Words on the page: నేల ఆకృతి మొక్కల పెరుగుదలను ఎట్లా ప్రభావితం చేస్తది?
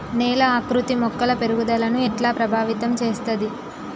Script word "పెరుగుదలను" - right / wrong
right